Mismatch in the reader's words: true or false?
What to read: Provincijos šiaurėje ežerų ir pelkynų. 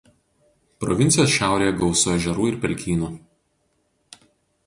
true